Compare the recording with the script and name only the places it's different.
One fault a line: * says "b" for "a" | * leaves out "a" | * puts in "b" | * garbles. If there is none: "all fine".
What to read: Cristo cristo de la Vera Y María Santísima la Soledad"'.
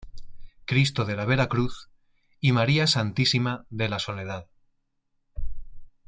* leaves out "cristo"
* puts in "Cruz"
* puts in "de"